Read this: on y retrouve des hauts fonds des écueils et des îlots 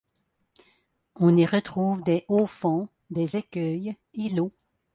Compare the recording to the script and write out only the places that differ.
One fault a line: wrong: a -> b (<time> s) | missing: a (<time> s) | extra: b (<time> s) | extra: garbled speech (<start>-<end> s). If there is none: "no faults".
missing: des (4.3 s)